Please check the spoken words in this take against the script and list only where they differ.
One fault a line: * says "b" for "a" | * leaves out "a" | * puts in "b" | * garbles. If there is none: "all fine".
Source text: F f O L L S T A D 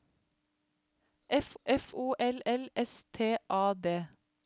all fine